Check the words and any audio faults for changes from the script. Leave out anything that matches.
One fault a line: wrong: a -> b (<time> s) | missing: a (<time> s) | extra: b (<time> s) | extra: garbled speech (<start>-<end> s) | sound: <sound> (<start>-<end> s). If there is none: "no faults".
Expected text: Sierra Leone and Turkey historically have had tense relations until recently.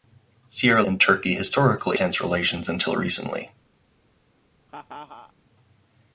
missing: Leone (0.8 s)
missing: have had (2.0 s)
sound: laugh (4.7-5.3 s)